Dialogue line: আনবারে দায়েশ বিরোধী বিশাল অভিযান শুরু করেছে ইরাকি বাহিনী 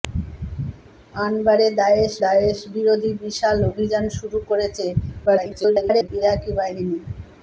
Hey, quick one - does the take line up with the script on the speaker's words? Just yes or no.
no